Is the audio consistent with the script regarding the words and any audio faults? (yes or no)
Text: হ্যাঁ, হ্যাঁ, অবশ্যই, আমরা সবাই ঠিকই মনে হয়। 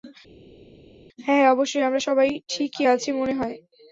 no